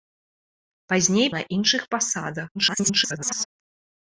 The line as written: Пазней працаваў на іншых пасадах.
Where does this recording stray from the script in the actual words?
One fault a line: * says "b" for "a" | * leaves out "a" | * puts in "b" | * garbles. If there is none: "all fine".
* leaves out "працаваў"
* garbles